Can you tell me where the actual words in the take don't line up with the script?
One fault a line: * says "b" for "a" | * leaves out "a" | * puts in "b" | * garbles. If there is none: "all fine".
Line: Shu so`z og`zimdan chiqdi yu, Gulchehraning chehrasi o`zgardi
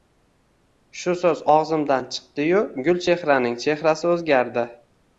all fine